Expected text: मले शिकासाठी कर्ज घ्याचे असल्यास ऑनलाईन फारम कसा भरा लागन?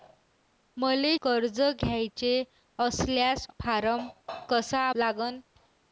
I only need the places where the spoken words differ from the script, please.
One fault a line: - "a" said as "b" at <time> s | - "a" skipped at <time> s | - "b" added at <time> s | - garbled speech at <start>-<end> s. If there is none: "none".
- "शिकासाठी" skipped at 1.2 s
- "ऑनलाईन" skipped at 3.5 s
- "भरा" skipped at 4.9 s